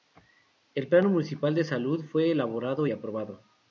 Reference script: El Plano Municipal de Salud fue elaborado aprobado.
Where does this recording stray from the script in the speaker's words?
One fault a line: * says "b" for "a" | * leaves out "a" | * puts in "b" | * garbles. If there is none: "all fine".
all fine